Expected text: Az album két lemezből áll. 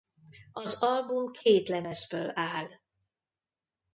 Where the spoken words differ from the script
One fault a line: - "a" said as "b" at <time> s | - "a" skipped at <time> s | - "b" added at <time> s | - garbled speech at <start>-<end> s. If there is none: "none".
none